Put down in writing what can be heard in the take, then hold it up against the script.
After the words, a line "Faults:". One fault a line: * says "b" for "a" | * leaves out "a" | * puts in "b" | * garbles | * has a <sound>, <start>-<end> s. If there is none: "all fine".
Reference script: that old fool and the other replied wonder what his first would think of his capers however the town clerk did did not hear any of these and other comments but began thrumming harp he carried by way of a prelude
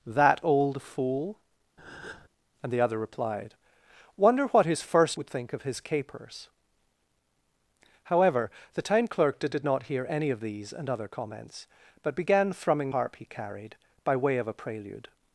that old fool and the other replied wonder what his first would think of his capers however the town clerk did did not hear any of these and other comments but began thrumming harp he carried by way of a prelude
Faults:
* has a breath, 1.8-2.3 s